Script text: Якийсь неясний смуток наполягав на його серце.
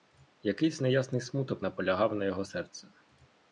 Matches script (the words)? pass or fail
pass